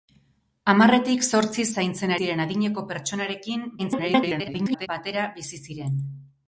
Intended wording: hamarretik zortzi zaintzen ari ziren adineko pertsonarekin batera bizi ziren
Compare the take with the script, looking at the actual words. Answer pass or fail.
fail